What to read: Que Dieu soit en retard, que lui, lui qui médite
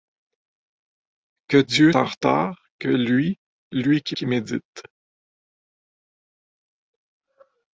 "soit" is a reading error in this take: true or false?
true